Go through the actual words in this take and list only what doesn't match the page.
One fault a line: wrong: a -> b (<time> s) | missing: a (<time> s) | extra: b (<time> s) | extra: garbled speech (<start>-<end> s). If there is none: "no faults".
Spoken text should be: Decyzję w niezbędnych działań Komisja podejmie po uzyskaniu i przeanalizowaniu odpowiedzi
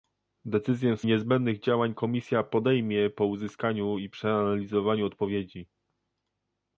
no faults